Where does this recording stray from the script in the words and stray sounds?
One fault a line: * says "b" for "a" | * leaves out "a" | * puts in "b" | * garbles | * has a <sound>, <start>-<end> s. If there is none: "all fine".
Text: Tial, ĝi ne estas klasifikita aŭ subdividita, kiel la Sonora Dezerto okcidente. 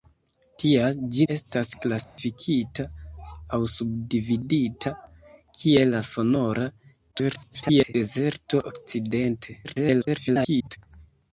* leaves out "ne"
* has a dropout, 2.0-2.2 s
* garbles
* garbles